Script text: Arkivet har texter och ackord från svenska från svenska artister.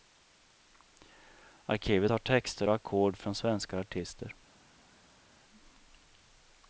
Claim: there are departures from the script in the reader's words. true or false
true